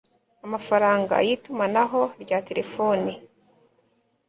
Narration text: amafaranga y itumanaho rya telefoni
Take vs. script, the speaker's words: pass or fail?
pass